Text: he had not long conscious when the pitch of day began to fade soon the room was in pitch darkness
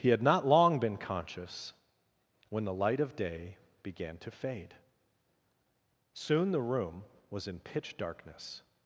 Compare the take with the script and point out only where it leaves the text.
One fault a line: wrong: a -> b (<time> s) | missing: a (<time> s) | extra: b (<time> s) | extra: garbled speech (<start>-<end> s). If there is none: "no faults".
extra: been (0.8 s)
wrong: pitch -> light (2.7 s)